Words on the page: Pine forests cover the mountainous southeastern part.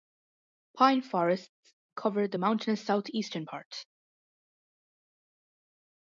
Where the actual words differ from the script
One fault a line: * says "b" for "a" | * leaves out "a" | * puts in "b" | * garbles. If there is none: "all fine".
all fine